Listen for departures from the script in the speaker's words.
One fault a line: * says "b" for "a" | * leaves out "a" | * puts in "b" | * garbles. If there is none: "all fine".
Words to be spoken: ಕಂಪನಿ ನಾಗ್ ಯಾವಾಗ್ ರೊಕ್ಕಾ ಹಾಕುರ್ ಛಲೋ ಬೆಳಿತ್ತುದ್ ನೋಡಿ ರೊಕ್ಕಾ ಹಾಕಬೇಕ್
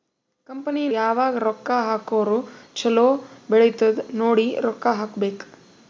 * leaves out "ನಾಗ್"